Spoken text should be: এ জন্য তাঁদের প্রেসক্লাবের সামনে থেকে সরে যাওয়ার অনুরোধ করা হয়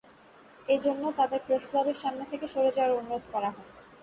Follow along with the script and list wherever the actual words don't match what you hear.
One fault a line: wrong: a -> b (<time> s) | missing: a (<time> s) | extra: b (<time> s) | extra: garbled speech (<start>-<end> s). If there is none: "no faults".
no faults